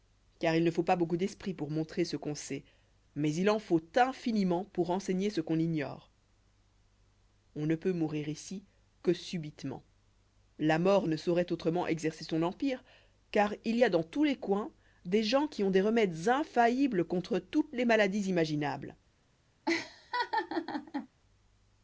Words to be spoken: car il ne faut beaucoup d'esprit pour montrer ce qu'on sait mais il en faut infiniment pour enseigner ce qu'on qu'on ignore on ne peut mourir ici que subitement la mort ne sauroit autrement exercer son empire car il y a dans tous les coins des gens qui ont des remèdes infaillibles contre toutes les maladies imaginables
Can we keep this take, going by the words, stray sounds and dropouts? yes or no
no